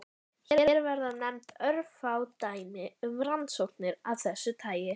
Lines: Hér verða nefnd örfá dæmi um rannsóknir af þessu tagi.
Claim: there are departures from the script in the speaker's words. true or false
false